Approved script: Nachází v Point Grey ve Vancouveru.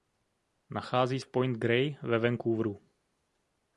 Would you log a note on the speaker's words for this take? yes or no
no